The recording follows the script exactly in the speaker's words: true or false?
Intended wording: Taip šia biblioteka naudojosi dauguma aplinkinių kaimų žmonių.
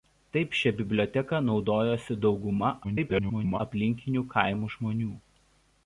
false